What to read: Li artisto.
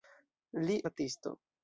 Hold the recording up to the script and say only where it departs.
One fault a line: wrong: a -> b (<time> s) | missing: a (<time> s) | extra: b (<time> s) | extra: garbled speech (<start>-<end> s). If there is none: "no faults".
no faults